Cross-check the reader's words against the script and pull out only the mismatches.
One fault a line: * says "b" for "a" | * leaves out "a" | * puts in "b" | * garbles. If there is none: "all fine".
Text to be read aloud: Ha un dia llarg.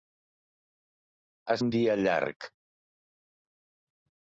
all fine